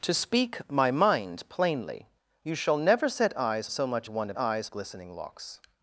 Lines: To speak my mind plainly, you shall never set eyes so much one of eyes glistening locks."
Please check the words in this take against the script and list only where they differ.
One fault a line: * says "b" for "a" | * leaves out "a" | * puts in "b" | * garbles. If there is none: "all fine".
all fine